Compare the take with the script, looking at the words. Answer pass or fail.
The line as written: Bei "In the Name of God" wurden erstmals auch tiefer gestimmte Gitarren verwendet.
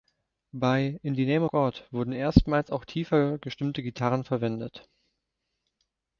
fail